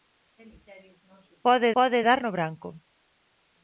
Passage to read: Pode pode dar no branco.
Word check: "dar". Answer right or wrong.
right